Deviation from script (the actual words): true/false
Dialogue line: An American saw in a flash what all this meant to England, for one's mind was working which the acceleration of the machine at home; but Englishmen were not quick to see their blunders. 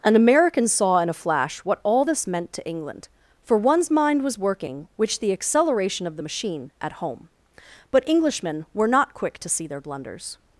false